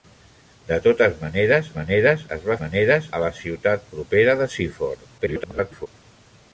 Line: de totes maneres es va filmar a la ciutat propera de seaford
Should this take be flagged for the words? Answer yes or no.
yes